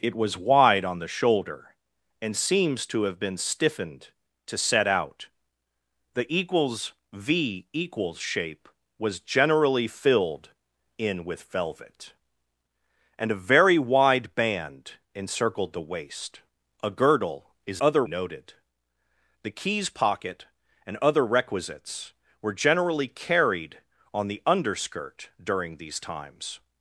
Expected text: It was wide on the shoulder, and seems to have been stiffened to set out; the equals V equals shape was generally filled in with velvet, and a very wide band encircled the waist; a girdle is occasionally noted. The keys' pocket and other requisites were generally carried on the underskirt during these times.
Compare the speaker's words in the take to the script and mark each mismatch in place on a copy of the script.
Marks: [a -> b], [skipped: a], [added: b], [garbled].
It was wide on the shoulder, and seems to have been stiffened to set out; the equals V equals shape was generally filled in with velvet, and a very wide band encircled the waist; a girdle is [occasionally -> other] noted. The keys' pocket and other requisites were generally carried on the underskirt during these times.